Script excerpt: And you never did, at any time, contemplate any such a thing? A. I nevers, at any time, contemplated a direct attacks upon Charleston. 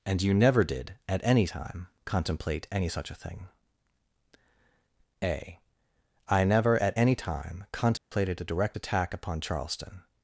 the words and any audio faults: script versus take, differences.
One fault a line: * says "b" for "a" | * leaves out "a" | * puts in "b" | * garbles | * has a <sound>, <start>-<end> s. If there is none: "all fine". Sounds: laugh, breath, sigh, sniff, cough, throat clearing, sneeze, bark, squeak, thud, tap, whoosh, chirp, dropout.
* says "never" for "nevers"
* has a dropout, 8.0-8.1 s
* says "attack" for "attacks"